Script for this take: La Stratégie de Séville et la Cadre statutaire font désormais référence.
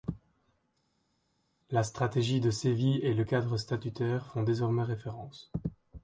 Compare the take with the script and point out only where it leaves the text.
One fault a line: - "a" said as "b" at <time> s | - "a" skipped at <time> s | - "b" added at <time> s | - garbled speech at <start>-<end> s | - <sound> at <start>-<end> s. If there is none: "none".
- "la" said as "le" at 3.1 s